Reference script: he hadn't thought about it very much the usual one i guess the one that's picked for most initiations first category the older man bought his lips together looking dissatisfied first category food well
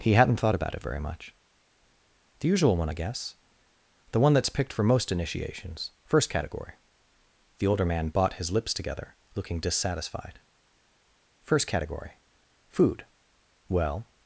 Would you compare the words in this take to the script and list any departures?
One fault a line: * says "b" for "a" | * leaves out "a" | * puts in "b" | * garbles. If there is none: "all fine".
all fine